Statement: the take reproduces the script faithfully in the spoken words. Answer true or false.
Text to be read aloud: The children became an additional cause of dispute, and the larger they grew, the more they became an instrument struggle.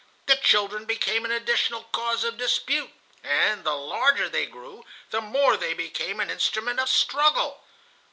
false